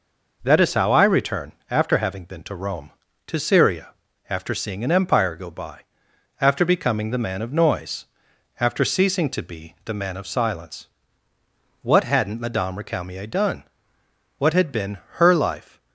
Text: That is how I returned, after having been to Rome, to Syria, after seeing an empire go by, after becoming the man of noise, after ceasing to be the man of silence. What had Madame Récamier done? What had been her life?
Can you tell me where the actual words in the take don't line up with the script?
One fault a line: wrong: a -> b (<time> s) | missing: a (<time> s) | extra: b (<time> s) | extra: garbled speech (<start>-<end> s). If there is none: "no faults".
wrong: returned -> return (1.0 s)
wrong: had -> hadn't (12.0 s)